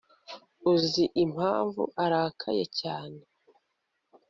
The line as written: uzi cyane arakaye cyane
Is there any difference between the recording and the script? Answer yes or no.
yes